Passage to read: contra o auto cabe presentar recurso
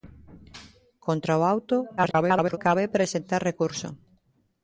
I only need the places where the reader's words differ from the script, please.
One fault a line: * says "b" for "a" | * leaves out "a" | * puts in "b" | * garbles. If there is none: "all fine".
* garbles